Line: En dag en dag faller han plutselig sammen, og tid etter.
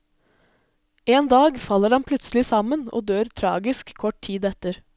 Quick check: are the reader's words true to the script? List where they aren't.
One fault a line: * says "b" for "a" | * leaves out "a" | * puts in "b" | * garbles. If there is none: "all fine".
* leaves out "en dag"
* puts in "dør tragisk kort"